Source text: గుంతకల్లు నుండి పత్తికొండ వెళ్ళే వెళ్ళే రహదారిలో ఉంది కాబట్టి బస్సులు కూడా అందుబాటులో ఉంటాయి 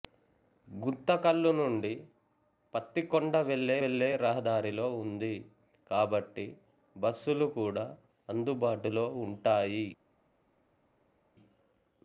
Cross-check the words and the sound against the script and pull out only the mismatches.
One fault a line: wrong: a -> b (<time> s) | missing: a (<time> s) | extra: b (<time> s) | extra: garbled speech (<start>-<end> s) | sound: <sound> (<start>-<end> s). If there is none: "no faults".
no faults